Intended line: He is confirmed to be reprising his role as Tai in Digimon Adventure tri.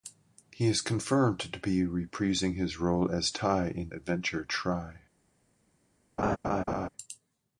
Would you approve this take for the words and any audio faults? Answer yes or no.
no